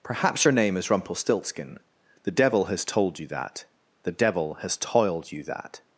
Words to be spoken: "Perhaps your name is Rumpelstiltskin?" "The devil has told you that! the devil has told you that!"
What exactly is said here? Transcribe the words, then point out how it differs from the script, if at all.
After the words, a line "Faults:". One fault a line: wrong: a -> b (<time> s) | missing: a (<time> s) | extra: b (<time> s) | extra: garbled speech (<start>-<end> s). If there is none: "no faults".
"Perhaps your name is Rumpelstiltskin?" "The devil has told you that! the devil has toiled you that!"
Faults:
wrong: told -> toiled (4.8 s)